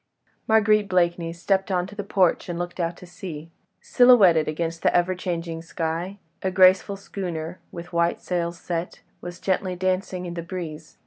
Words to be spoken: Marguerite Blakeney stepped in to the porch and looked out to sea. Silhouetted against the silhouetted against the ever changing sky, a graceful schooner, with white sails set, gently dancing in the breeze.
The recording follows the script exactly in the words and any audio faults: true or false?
false